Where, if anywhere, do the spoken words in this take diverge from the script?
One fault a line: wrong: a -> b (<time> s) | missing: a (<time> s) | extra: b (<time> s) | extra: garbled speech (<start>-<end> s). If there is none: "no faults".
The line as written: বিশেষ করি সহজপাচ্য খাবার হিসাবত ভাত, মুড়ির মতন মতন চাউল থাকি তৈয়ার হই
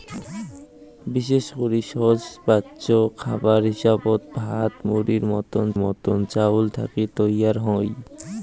no faults